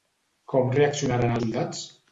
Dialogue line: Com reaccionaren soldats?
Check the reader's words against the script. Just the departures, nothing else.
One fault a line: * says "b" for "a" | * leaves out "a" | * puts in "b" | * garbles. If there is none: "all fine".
all fine